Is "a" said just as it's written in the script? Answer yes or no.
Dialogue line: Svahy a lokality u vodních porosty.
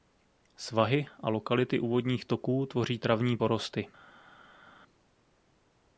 yes